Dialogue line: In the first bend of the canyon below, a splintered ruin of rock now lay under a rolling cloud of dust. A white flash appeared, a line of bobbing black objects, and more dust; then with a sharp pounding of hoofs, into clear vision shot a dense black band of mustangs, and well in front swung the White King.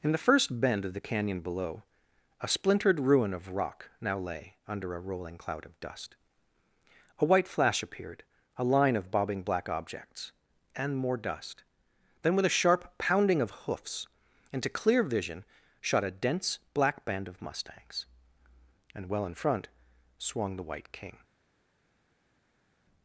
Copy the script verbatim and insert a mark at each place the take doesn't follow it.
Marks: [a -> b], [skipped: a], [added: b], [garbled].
In the first bend of the canyon below, a splintered ruin of rock now lay under a rolling cloud of dust. A white flash appeared, a line of bobbing black objects, and more dust; then with a sharp pounding of hoofs, into clear vision shot a dense black band of mustangs, and well in front swung the White King.